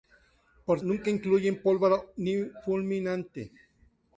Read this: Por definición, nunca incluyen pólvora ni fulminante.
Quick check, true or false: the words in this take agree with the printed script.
false